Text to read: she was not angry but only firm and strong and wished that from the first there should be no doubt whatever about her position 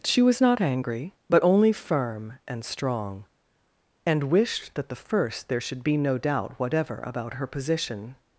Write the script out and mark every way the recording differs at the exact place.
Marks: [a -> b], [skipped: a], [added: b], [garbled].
she was not angry but only firm and strong and wished that [skipped: from] the first there should be no doubt whatever about her position